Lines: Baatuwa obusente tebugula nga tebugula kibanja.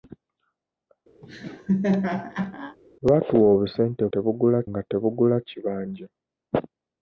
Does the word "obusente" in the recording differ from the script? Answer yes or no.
no